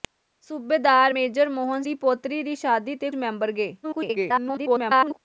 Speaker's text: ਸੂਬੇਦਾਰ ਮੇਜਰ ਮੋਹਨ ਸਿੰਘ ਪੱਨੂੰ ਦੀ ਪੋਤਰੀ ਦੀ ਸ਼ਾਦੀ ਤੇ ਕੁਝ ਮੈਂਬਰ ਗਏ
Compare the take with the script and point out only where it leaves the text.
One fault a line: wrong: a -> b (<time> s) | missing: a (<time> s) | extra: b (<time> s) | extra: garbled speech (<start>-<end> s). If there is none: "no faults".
missing: ਸਿੰਘ ਪੱਨੂੰ (1.8 s)
missing: ਕੁਝ (3.1 s)
extra: garbled speech (3.8-5.2 s)